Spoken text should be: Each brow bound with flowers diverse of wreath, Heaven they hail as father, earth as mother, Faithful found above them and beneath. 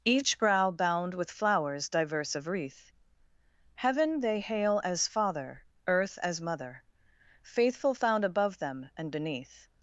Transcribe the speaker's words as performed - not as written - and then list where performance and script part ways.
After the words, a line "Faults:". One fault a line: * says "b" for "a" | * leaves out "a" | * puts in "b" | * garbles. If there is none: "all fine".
Each brow bound with flowers diverse of wreath, Heaven they hail as father, earth as mother, Faithful found above them and beneath.
Faults:
all fine